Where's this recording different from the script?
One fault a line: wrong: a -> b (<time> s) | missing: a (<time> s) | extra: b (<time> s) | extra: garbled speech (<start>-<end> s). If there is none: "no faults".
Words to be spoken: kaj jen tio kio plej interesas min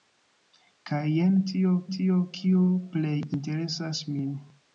extra: tio (2.0 s)